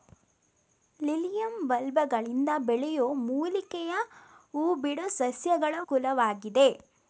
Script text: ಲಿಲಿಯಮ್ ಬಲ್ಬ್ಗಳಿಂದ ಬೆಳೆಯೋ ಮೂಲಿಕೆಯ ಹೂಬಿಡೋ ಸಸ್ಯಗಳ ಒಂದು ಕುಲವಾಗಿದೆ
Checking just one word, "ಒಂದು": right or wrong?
wrong